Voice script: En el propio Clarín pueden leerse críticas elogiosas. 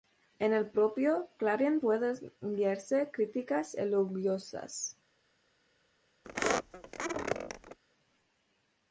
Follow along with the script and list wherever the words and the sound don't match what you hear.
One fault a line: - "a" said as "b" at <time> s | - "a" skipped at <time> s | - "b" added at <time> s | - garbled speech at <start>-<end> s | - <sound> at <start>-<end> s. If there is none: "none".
- squeak at 6.2-7.8 s